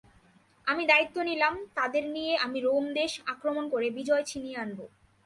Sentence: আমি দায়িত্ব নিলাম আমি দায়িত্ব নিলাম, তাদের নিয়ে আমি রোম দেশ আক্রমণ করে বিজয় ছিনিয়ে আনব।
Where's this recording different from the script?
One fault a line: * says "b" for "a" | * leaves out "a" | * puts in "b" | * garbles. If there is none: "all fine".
* leaves out "আমি দায়িত্ব নিলাম"